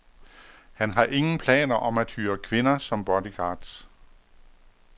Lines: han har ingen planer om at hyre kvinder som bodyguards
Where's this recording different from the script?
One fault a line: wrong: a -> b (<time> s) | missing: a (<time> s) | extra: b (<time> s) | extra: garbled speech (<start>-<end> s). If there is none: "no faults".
no faults